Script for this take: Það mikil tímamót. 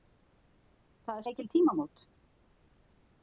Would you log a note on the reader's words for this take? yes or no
no